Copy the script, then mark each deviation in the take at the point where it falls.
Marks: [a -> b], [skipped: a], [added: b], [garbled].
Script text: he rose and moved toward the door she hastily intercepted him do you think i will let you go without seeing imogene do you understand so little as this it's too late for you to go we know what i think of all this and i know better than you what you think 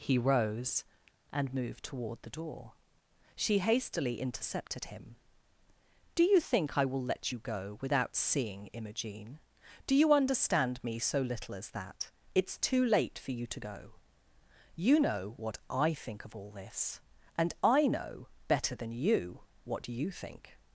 he rose and moved toward the door she hastily intercepted him do you think i will let you go without seeing imogene do you understand [added: me] so little as [this -> that] it's too late for you to go [we -> you] know what i think of all this and i know better than you what you think